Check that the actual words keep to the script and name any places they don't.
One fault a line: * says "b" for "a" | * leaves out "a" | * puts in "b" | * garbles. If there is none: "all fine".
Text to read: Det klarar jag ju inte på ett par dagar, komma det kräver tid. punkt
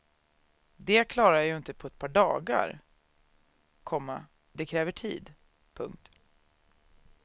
all fine